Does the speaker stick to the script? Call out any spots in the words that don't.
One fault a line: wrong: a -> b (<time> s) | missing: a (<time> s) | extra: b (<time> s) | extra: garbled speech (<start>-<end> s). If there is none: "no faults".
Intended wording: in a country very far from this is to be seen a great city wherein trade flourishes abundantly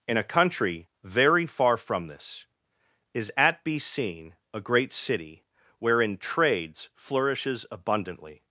wrong: to -> at (3.4 s)
wrong: trade -> trades (6.2 s)